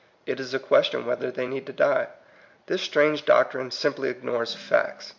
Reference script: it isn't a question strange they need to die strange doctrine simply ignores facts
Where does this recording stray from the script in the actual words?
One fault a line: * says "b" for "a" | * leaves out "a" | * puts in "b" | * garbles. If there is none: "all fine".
* says "is" for "isn't"
* says "whether" for "strange"
* puts in "this"